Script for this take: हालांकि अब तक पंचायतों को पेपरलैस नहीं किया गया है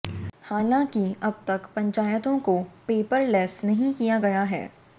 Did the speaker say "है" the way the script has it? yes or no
yes